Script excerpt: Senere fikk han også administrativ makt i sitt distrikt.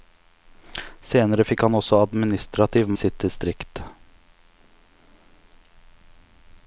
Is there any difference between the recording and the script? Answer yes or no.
yes